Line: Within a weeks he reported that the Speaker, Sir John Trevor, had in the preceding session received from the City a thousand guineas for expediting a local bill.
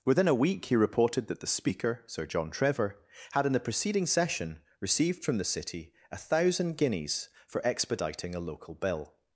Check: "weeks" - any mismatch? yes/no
yes